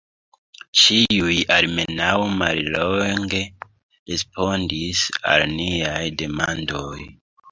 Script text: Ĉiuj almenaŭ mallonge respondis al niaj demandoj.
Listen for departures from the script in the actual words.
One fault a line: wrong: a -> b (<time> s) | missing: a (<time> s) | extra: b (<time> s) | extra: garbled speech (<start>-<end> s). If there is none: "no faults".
no faults